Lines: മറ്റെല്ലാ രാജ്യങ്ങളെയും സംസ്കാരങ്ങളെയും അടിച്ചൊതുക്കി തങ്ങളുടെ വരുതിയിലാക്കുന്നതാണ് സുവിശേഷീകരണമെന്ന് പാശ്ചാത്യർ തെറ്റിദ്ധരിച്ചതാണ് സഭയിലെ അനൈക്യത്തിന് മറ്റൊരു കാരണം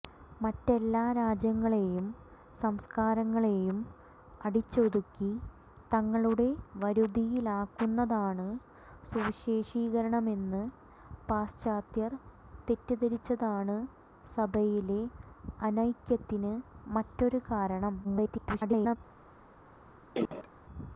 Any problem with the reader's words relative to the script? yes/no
yes